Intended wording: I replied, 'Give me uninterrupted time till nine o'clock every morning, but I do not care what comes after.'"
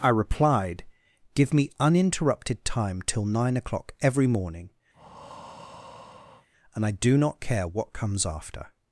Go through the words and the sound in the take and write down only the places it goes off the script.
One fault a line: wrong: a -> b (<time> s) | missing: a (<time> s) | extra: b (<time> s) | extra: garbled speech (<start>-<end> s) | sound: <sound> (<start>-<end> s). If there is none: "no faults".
sound: breath (4.9-6.5 s)
wrong: but -> and (6.7 s)